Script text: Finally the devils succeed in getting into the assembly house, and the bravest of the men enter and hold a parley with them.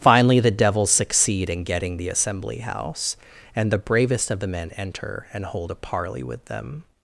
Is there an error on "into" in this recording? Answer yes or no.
yes